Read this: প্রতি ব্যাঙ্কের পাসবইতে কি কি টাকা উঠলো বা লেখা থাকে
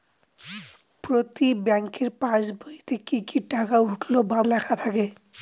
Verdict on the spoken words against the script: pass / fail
pass